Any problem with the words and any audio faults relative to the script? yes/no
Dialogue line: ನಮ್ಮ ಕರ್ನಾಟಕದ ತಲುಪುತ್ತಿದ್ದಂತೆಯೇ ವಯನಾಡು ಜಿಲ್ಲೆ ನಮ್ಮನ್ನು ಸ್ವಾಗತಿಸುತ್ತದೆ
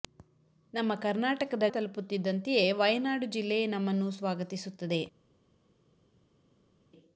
no